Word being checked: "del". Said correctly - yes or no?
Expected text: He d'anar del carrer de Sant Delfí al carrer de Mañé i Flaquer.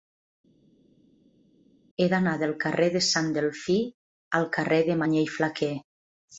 yes